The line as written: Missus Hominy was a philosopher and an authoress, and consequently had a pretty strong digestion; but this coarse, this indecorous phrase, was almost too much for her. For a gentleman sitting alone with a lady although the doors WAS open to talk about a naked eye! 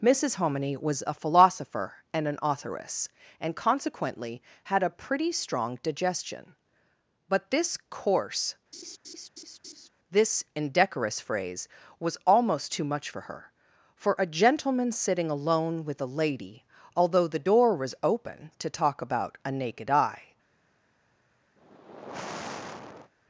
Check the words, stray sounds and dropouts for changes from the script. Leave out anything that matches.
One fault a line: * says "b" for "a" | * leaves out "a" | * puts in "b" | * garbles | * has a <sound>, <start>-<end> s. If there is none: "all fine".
* has a laugh, 8.7-9.9 s
* says "door" for "doors"
* has a sigh, 21.6-23.1 s